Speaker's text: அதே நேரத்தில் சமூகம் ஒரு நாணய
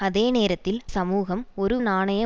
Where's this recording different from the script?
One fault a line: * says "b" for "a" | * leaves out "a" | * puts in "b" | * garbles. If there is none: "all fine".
all fine